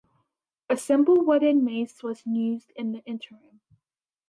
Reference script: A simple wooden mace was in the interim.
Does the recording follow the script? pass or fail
fail